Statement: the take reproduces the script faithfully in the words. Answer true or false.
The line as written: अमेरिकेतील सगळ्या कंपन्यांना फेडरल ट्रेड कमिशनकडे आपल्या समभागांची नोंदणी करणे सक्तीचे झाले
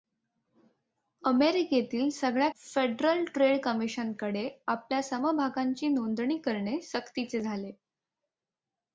false